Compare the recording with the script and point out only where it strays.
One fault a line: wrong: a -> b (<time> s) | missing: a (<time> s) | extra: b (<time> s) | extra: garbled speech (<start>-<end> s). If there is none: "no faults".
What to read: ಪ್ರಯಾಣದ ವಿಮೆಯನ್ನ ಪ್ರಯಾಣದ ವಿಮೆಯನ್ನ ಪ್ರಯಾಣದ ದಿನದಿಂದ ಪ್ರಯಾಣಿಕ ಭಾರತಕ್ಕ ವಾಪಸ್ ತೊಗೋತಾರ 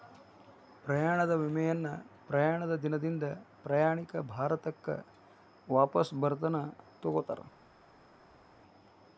missing: ವಿಮೆಯನ್ನ ಪ್ರಯಾಣದ (2.8 s)
extra: ಬರತನ (6.2 s)